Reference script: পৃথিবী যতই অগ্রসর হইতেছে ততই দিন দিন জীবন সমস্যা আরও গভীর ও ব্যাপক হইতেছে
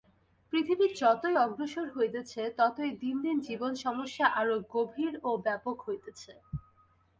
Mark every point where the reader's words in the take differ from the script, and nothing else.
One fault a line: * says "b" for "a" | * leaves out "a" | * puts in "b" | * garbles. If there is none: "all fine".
all fine